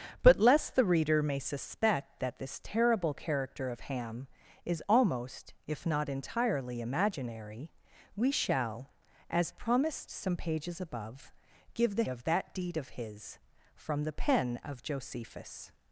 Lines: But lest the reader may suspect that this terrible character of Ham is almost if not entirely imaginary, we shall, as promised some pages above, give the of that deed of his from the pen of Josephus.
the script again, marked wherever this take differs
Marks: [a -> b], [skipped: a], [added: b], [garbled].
But lest the reader may suspect that this terrible character of Ham is almost if not entirely imaginary, we shall, as promised some pages above, give the of that deed of his from the pen of Josephus.